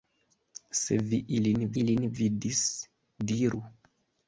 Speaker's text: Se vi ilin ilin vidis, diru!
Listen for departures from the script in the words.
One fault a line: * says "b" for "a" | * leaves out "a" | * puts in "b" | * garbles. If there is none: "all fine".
all fine